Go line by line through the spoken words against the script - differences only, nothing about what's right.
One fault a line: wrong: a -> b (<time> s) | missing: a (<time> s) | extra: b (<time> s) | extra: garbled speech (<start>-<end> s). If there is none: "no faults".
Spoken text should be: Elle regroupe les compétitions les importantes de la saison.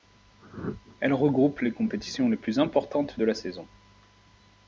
extra: plus (2.4 s)